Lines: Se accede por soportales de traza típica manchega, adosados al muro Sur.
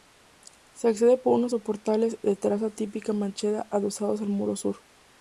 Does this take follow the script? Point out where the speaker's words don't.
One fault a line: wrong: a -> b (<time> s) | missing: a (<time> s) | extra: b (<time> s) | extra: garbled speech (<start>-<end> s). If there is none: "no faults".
extra: unos (1.4 s)